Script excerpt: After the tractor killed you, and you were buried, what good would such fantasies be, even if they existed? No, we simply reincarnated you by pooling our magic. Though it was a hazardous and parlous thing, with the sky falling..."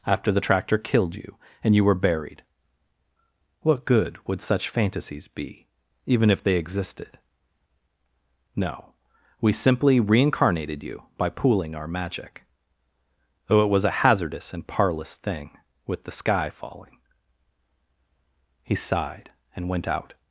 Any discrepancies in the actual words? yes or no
yes